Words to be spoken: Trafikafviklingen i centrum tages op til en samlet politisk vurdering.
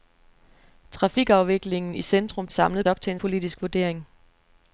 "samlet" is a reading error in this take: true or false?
true